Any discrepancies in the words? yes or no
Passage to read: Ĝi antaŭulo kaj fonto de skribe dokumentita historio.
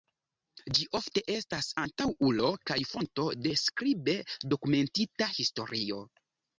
yes